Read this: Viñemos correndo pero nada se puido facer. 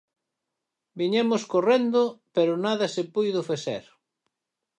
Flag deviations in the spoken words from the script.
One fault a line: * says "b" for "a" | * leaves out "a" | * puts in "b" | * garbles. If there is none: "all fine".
all fine